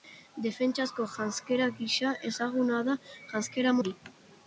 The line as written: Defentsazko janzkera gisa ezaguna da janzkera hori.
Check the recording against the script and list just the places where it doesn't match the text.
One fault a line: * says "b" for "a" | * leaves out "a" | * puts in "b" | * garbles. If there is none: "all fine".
all fine